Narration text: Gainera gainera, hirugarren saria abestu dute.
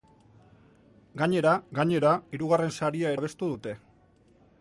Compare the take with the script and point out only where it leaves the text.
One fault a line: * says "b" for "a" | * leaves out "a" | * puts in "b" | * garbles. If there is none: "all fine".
all fine